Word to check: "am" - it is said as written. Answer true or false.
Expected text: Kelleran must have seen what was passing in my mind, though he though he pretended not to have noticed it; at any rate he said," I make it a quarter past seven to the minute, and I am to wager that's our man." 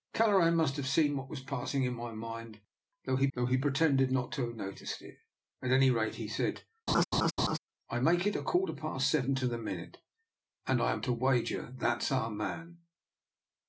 true